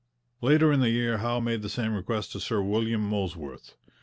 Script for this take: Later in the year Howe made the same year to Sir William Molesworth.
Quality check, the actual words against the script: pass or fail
fail